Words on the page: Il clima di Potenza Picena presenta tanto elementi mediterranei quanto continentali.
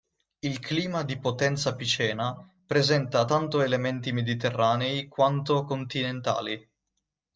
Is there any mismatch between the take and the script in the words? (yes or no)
no